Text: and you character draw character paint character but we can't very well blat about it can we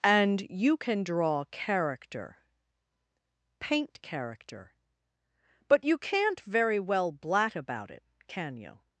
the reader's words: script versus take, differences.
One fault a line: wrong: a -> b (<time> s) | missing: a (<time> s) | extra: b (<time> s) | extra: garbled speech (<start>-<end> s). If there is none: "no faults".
wrong: character -> can (0.8 s)
wrong: we -> you (5.8 s)
wrong: we -> you (8.6 s)